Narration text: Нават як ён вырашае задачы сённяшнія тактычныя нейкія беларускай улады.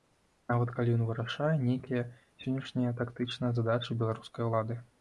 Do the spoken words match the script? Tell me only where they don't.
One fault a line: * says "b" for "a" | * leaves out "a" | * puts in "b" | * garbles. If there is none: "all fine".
* says "калі" for "як"
* says "нейкія" for "задачы"
* says "задачы" for "нейкія"